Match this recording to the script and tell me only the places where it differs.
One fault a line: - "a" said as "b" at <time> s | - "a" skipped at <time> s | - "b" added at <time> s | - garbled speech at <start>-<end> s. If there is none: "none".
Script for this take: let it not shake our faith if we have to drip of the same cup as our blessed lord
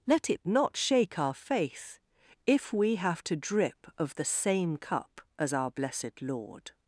none